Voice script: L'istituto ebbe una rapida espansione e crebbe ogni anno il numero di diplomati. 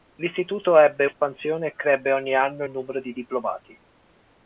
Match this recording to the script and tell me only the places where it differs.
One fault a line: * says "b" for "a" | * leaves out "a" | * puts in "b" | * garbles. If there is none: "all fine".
* leaves out "una rapida"